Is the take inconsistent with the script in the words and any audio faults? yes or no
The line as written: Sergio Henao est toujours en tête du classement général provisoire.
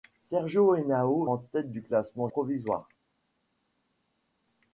yes